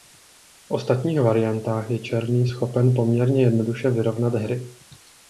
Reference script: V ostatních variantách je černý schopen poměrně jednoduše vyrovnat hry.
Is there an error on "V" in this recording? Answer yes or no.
no